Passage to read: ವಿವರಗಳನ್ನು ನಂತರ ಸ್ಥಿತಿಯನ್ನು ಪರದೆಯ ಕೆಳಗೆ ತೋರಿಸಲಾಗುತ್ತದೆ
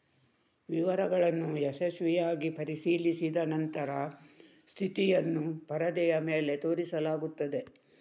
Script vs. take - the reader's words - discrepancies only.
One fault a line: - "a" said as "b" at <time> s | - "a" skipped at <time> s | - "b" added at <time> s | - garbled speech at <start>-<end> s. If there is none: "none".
- "ಯಶಸ್ವಿಯಾಗಿ ಪರಿಶೀಲಿಸಿದ" added at 1.6 s
- "ಕೆಳಗೆ" said as "ಮೇಲೆ" at 6.3 s